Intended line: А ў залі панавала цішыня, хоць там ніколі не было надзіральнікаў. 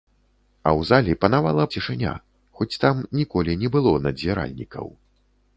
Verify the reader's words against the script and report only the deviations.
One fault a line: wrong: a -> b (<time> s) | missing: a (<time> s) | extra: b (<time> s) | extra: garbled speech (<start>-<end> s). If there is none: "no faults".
no faults